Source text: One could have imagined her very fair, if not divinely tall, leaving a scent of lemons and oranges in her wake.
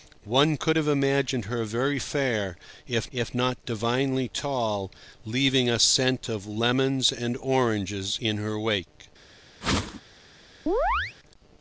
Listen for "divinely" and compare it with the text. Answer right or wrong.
right